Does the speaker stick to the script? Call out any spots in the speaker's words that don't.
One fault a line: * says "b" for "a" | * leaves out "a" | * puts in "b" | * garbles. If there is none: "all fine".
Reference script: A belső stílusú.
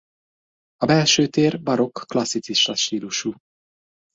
* puts in "tér barokk klasszicista"